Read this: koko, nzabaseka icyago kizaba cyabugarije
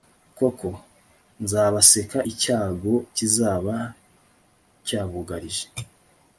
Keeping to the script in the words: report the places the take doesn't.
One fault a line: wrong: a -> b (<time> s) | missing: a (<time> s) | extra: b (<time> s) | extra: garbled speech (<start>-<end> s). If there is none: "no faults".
no faults